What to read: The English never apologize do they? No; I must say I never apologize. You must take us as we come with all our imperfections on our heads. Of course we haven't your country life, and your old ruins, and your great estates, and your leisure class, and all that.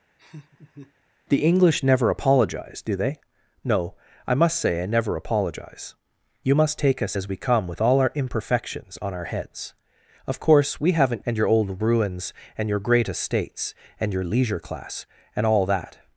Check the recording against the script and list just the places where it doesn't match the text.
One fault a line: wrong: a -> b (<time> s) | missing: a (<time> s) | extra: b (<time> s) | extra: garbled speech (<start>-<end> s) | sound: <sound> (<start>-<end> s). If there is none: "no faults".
sound: laugh (0.2-0.9 s)
missing: your country life (11.2 s)